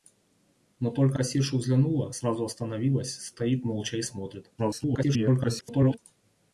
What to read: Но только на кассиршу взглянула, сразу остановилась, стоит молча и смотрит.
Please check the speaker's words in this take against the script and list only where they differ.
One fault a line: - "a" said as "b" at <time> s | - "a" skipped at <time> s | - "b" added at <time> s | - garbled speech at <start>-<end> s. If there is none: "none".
- "на" skipped at 1.2 s
- garbled speech at 4.6-6.0 s